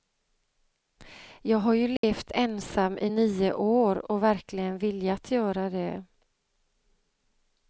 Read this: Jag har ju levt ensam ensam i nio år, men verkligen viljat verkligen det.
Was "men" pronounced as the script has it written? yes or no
no